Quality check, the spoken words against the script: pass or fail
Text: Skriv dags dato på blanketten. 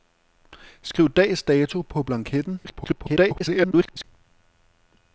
fail